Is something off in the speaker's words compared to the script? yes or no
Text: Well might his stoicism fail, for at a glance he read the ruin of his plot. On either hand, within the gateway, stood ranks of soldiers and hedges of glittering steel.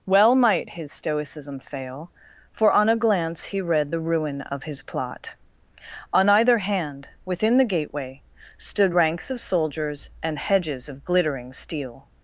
yes